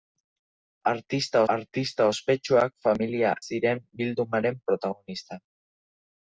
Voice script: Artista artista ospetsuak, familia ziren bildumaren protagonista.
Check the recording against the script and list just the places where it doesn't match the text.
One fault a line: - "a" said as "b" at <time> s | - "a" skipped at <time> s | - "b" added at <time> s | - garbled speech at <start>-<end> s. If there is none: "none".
none